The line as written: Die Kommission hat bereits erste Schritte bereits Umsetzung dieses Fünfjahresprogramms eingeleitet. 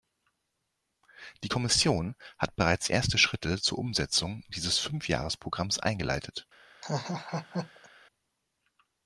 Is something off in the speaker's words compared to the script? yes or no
yes